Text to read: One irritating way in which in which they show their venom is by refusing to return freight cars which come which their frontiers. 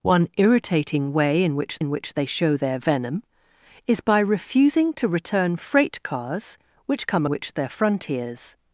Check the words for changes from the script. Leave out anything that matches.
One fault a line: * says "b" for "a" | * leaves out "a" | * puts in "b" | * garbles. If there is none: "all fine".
all fine